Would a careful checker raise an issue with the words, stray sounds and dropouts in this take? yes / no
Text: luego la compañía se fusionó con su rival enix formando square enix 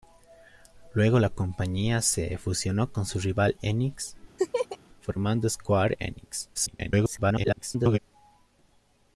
yes